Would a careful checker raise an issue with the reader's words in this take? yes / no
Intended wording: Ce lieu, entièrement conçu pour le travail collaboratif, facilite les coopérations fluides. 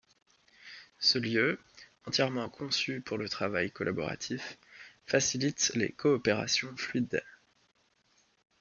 no